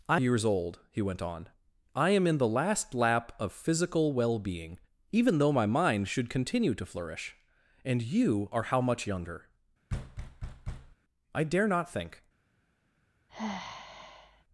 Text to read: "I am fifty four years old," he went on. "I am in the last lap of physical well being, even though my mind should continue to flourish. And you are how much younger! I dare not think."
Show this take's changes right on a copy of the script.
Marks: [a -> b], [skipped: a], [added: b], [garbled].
"I [skipped: am fifty four] years old," he went on. "I am in the last lap of physical well being, even though my mind should continue to flourish. And you are how much younger! I dare not think."